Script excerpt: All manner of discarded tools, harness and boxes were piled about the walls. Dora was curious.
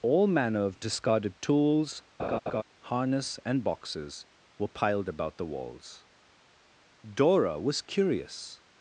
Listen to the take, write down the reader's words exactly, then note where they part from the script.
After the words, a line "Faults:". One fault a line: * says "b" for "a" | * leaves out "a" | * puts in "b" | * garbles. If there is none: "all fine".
All manner of discarded tools, harness and boxes were piled about the walls. Dora was curious.
Faults:
all fine